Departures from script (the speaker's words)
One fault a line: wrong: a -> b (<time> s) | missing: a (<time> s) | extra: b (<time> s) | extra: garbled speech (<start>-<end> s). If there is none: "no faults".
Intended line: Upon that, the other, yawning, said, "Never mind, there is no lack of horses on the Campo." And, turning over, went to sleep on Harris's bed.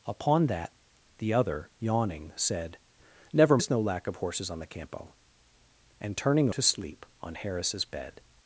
missing: mind there (3.6 s)
missing: over went (6.5 s)